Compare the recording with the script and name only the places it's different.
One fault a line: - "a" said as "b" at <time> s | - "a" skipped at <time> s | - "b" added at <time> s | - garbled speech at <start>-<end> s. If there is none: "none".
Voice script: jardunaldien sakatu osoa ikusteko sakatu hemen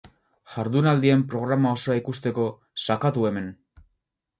- "sakatu" said as "programa" at 1.4 s